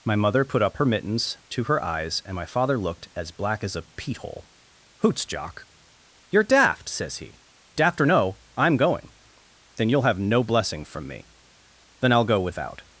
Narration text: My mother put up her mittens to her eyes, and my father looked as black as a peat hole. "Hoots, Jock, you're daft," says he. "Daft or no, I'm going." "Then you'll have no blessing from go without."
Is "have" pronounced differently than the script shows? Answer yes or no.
no